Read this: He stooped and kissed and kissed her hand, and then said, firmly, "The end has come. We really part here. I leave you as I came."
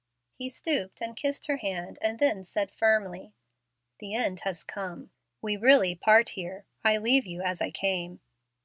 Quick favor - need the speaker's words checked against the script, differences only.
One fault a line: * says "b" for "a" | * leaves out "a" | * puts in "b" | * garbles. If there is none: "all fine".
* leaves out "and kissed"